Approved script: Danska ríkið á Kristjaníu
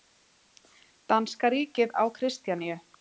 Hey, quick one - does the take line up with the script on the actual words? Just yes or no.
yes